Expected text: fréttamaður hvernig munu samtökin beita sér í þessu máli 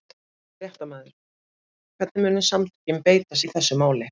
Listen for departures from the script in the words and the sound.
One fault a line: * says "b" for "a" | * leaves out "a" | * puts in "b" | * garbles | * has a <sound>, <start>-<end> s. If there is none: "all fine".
* leaves out "sér"